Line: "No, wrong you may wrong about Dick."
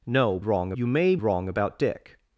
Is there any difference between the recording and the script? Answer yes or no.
no